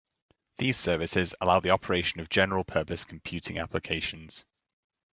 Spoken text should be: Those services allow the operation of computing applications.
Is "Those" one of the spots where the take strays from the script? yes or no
yes